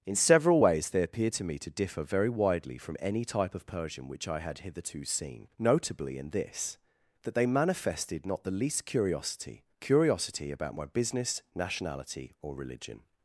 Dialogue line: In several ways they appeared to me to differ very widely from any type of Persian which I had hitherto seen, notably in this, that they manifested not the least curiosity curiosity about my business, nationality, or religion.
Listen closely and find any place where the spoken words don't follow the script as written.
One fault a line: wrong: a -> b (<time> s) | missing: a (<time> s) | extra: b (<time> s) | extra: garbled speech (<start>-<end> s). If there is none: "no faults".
no faults